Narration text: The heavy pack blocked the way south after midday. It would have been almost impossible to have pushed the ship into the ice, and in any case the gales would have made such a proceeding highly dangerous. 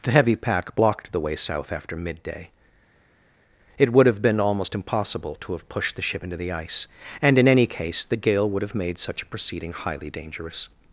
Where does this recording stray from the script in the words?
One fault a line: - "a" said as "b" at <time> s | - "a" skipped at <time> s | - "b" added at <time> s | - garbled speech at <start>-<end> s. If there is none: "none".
- "gales" said as "gale" at 8.2 s